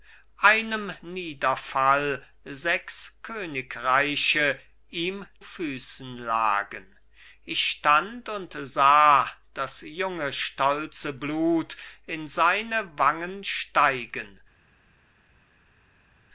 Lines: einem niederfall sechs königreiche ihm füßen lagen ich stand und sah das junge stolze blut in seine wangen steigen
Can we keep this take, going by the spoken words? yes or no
yes